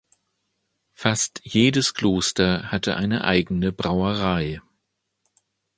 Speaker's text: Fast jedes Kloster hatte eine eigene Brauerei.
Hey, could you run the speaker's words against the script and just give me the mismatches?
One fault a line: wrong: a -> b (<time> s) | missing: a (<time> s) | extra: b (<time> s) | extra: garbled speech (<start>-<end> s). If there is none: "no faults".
no faults